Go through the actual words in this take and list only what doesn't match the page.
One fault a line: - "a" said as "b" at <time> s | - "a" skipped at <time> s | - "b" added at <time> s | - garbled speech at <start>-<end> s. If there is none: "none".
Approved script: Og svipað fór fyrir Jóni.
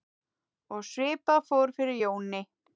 none